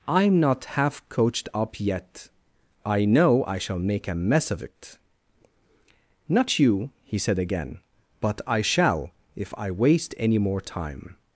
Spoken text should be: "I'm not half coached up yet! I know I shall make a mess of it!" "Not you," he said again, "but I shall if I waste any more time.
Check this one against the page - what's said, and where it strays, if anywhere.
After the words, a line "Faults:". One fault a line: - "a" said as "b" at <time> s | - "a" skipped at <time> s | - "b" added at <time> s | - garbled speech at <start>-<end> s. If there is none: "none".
"I'm not half coached up yet! I know I shall make a mess of it!" "Not you," he said again, "but I shall if I waste any more time.
Faults:
none